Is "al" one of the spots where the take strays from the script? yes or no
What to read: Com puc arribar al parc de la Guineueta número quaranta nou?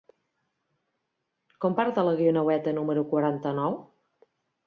yes